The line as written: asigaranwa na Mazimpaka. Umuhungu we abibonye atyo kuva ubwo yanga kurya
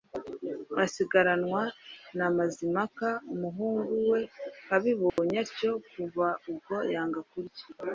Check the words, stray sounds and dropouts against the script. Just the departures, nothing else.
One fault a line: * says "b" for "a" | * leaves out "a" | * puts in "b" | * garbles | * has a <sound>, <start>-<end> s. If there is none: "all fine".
* has a dropout, 5.1-5.2 s